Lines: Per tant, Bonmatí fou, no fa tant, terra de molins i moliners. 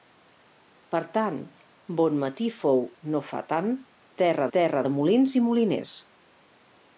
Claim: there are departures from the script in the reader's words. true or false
true